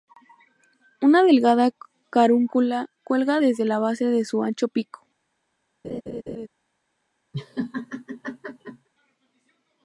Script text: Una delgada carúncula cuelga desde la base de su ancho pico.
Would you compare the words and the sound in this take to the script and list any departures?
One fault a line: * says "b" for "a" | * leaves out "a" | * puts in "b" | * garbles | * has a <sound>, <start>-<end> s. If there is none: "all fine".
* has a laugh, 5.8-6.5 s
* has a laugh, 7.3-8.9 s